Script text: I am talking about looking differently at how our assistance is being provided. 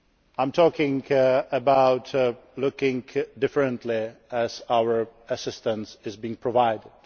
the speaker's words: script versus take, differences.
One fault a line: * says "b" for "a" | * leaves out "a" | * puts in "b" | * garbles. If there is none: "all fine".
all fine